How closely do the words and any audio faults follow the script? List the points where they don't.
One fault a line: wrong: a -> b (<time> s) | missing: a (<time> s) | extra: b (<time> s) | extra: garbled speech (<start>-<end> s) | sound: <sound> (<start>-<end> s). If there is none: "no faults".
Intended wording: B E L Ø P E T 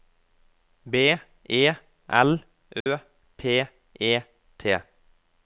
sound: dropout (2.8-2.9 s)